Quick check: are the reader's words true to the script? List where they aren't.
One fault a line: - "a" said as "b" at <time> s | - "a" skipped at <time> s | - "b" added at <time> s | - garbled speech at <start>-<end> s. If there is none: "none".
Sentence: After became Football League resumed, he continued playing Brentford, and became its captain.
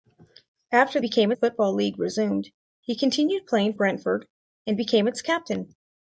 none